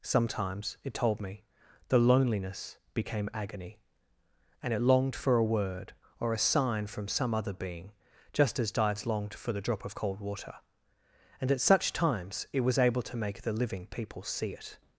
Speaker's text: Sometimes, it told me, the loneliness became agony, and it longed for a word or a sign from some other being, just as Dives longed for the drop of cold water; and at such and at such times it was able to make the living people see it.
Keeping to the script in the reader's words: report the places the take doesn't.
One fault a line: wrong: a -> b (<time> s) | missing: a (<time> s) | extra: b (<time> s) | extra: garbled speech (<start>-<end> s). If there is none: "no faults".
missing: and at such (11.9 s)